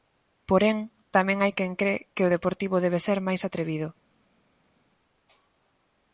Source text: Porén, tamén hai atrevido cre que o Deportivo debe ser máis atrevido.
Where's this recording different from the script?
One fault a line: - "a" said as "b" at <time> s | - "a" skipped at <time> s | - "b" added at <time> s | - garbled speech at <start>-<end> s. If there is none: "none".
- "atrevido" said as "quen" at 1.6 s